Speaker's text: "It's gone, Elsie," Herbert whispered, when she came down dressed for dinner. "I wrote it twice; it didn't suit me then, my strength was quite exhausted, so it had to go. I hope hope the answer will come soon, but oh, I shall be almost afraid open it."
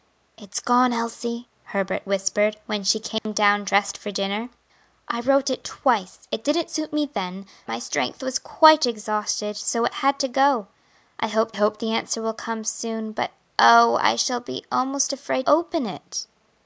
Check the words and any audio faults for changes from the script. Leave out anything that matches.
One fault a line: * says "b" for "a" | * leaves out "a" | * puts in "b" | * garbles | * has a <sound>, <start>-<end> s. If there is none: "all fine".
* has a dropout, 3.2-3.3 s